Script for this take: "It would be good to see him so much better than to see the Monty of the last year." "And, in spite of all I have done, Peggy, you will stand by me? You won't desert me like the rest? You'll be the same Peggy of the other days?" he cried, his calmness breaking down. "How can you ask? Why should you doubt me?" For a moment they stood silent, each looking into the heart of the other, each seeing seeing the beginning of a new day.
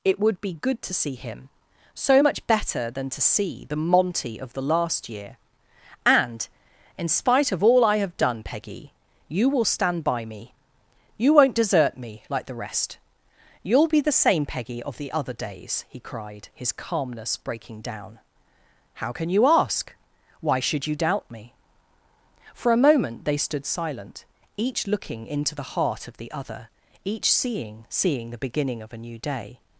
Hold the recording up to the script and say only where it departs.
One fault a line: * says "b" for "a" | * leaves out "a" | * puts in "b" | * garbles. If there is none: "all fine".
all fine